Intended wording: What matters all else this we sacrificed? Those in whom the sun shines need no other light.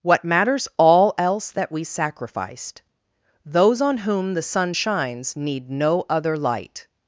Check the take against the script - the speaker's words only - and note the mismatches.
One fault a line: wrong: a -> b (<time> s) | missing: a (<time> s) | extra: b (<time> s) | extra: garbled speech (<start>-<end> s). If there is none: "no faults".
wrong: this -> that (1.5 s)
wrong: in -> on (3.8 s)